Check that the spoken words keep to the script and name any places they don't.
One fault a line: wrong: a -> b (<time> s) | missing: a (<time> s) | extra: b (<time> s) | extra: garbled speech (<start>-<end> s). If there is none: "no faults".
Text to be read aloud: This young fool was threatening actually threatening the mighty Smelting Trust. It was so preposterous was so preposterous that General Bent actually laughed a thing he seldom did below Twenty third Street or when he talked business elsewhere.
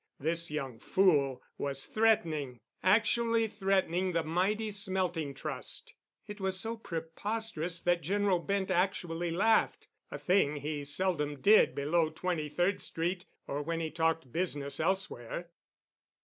missing: was so preposterous (7.8 s)